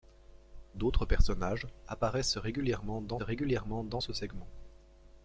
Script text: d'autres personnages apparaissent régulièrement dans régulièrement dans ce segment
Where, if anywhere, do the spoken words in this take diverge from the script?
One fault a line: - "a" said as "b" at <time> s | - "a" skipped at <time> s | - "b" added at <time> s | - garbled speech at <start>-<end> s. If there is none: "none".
none